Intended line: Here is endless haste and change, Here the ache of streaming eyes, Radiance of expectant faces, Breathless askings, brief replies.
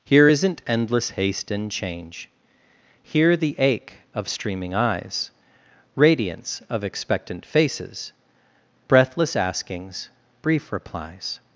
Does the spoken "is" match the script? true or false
false